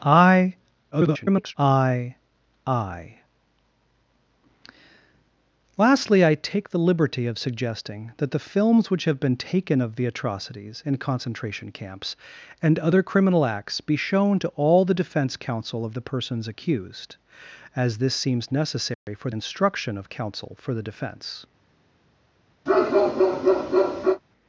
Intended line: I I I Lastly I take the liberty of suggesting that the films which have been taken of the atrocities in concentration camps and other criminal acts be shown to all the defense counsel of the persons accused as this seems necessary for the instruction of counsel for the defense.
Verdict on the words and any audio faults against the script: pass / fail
fail